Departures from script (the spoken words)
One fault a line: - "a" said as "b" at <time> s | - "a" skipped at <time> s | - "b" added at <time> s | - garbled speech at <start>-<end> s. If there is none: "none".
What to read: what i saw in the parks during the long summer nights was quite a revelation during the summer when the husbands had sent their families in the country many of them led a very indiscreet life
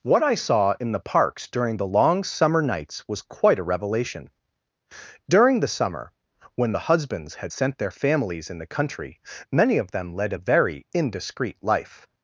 none